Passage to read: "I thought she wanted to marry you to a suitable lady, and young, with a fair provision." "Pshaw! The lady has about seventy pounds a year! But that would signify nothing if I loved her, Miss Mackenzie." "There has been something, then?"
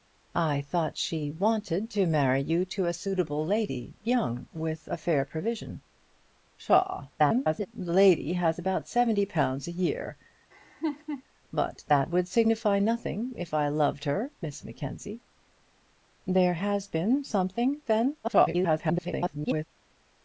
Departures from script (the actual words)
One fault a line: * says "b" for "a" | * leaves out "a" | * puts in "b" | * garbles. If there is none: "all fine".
* leaves out "and"
* garbles
* garbles